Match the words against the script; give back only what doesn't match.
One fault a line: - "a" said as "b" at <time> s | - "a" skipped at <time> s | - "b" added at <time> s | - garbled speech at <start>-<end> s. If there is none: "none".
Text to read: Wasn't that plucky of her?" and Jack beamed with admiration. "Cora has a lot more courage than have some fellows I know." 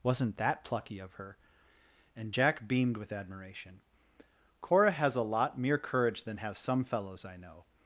- "more" said as "mere" at 5.6 s